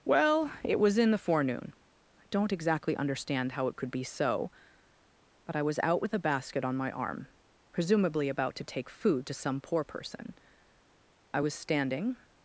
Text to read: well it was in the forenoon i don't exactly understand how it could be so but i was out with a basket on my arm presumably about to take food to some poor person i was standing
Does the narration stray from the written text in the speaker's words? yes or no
no